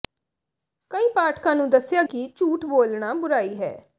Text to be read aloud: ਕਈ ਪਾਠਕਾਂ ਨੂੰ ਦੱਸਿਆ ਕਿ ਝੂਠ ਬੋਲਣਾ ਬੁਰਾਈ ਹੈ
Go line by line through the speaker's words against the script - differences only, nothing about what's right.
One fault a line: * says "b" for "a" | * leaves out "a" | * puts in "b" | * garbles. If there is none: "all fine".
all fine